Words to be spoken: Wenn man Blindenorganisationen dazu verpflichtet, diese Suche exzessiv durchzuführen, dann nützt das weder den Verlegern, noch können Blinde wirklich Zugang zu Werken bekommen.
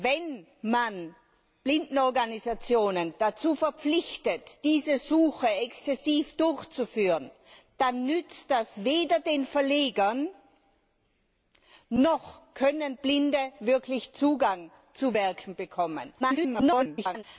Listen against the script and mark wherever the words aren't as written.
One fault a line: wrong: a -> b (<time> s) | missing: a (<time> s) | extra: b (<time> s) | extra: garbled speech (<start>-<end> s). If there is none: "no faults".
extra: garbled speech (16.2-17.2 s)